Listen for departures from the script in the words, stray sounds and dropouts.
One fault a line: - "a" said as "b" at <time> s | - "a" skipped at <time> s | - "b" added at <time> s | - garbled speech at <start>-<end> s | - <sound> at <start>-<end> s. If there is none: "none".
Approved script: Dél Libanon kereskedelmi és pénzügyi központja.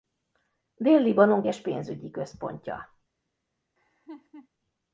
- "kereskedelmi" skipped at 1.4 s
- laugh at 3.8-4.5 s